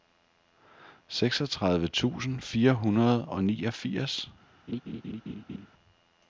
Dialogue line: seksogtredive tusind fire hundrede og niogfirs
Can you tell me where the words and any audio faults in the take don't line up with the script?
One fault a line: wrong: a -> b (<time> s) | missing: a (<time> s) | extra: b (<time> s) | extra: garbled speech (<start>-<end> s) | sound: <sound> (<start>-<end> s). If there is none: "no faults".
sound: laugh (4.7-5.7 s)